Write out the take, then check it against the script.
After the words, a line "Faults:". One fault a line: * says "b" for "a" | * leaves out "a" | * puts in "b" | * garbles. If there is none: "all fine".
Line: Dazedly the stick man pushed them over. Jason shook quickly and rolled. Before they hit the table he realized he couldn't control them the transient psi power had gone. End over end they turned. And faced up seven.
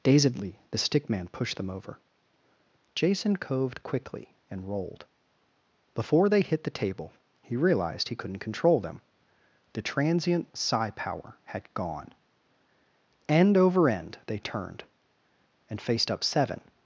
Dazedly the stick man pushed them over. Jason coved quickly and rolled. Before they hit the table he realized he couldn't control them the transient psi power had gone. End over end they turned. And faced up seven.
Faults:
* says "coved" for "shook"